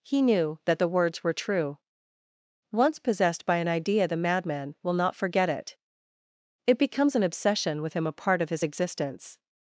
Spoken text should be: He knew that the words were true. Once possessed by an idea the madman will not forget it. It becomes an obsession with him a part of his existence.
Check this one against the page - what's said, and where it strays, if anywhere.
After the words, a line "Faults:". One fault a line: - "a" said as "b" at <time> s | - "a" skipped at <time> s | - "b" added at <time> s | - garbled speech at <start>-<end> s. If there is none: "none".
He knew that the words were true. Once possessed by an idea the madman will not forget it. It becomes an obsession with him a part of his existence.
Faults:
none